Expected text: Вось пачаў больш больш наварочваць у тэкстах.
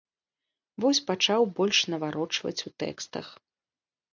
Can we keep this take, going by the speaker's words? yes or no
no